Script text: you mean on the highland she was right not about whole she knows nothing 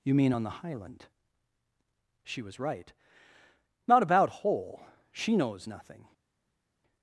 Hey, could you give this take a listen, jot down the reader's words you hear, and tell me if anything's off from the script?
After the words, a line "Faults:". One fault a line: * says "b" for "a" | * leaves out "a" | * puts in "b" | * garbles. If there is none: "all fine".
you mean on the highland she was right not about whole she knows nothing
Faults:
all fine